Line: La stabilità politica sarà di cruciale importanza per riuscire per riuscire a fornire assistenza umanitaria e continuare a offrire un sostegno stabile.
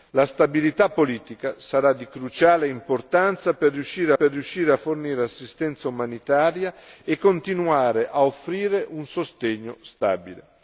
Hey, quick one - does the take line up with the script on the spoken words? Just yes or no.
yes